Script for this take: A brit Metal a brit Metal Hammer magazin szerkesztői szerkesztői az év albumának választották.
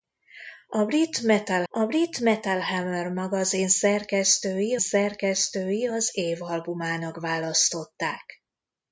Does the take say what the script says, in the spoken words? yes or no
yes